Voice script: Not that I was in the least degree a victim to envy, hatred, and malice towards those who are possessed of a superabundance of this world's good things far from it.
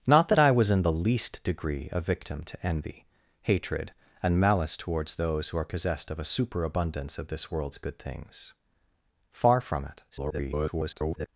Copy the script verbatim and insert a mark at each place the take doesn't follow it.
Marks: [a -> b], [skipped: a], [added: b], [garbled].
Not that I was in the least degree a victim to envy, hatred, and malice towards those who are possessed of a superabundance of this world's good things far from it. [garbled]